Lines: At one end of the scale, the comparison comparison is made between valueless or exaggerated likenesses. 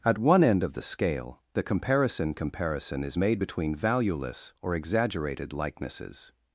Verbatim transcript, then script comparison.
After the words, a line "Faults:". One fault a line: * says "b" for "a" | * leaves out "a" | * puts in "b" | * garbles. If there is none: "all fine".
At one end of the scale, the comparison comparison is made between valueless or exaggerated likenesses.
Faults:
all fine